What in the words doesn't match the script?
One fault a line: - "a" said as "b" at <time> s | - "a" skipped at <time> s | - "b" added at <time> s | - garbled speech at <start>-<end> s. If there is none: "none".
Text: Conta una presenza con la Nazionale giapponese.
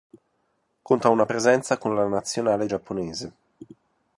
none